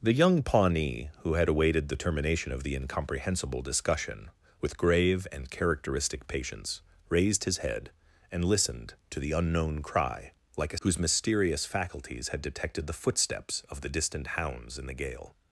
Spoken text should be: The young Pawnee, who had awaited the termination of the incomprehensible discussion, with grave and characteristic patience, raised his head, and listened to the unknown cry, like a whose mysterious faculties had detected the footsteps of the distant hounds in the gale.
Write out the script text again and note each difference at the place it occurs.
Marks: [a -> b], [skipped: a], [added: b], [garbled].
The young Pawnee, who had awaited the termination of the incomprehensible discussion, with grave and characteristic patience, raised his head, and listened to the unknown cry, like a whose mysterious faculties had detected the footsteps of the distant hounds in the gale.